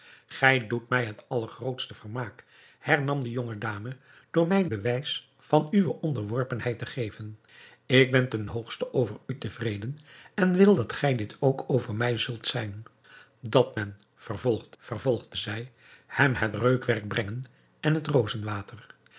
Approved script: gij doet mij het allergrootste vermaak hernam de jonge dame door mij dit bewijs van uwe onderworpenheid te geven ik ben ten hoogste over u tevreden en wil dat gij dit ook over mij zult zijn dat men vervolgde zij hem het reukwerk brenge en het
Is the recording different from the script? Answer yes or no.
yes